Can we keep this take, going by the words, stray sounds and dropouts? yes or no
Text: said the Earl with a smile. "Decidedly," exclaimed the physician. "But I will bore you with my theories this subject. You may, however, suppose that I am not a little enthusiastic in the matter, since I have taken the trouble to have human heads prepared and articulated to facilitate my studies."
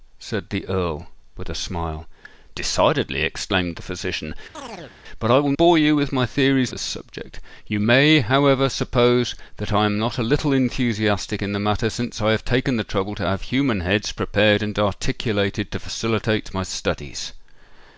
no